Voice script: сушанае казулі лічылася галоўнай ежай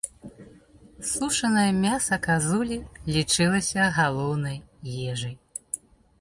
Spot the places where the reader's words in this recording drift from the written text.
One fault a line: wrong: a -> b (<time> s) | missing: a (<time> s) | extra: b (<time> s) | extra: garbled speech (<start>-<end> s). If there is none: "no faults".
extra: мяса (1.8 s)